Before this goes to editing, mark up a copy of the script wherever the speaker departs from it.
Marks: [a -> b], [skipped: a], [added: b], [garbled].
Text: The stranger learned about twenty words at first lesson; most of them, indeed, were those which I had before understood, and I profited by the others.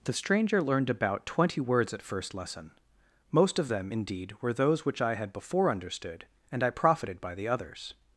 The stranger learned about twenty words at first lesson; most of them, indeed, were those which I had before understood, and I profited by the others.